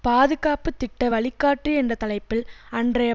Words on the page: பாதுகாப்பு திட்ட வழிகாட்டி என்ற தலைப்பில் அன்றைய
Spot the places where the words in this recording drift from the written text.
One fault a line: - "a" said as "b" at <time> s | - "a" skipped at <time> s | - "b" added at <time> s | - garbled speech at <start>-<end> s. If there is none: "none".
none